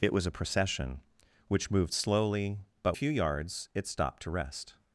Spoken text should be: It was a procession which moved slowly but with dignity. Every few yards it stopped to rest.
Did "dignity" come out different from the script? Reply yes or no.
yes